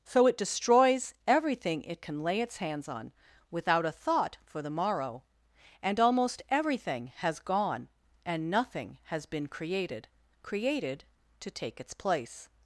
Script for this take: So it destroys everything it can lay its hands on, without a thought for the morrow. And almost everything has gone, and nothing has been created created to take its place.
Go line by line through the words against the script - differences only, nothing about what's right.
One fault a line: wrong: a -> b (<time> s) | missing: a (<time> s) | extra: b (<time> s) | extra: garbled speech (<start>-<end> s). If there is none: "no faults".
no faults